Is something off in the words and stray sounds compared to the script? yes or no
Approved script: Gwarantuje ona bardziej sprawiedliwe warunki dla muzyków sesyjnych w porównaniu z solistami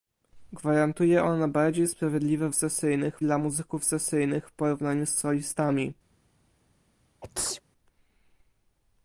yes